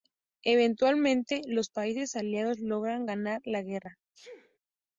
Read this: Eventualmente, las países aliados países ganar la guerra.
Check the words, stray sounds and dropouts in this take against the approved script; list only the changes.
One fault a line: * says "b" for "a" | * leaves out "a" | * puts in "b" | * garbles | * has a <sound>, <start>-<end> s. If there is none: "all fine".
* says "los" for "las"
* says "logran" for "países"
* has a sneeze, 4.1-4.6 s